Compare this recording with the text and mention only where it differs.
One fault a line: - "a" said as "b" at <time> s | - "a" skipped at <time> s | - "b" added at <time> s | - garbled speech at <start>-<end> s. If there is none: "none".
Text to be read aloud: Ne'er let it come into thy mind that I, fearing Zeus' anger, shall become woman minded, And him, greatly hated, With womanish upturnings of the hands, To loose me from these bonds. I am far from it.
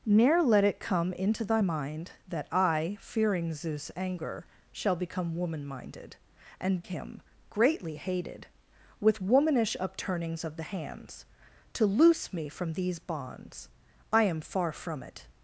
none